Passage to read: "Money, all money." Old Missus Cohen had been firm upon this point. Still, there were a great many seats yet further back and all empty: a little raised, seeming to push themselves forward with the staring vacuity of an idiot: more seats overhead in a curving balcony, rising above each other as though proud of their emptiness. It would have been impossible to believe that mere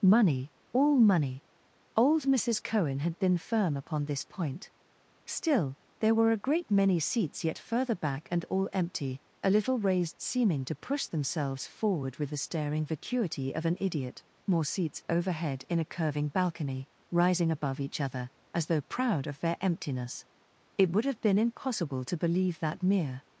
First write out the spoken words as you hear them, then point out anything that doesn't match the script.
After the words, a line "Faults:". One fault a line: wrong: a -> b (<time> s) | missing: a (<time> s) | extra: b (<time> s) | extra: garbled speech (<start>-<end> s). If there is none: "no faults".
"Money, all money." Old Missus Cohen had been firm upon this point. Still, there were a great many seats yet further back and all empty: a little raised, seeming to push themselves forward with the staring vacuity of an idiot: more seats overhead in a curving balcony, rising above each other as though proud of their emptiness. It would have been impossible to believe that mere
Faults:
no faults